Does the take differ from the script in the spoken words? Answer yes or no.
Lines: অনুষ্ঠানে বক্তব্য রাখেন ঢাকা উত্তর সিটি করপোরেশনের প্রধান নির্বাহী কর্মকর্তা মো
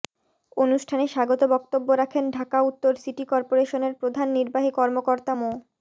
yes